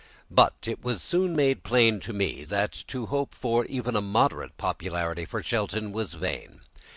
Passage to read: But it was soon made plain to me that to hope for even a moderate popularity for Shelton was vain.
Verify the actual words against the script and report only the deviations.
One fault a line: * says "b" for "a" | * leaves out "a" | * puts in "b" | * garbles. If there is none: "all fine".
all fine